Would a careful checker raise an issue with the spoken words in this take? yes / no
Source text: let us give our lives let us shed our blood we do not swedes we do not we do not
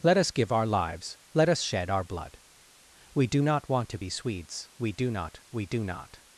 yes